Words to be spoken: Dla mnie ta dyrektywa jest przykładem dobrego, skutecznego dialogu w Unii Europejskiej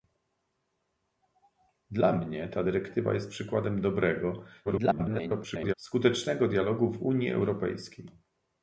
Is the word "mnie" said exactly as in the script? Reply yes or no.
yes